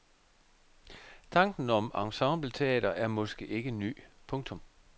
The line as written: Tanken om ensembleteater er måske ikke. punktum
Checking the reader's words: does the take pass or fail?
fail